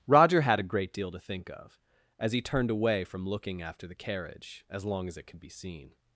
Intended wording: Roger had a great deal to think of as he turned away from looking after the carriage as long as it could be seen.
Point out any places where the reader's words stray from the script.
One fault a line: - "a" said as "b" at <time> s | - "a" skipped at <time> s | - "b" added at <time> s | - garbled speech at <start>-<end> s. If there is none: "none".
none